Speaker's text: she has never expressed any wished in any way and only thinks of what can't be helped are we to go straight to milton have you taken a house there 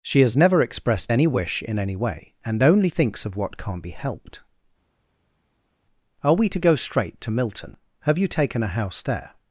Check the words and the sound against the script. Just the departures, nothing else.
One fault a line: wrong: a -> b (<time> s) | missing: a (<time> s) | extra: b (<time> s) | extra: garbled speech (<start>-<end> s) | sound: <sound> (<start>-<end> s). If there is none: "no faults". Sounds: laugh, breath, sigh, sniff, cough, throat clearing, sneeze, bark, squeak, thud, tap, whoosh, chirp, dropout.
wrong: wished -> wish (1.3 s)